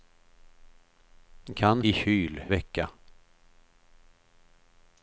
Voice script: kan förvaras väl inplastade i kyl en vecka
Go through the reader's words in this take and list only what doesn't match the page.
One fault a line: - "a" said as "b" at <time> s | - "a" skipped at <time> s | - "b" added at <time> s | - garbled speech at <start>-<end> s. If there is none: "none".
- "förvaras väl inplastade" skipped at 1.8 s
- "en" skipped at 2.4 s